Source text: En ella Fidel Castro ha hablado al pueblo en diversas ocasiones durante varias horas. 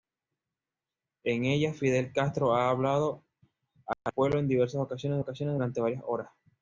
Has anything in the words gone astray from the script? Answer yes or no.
yes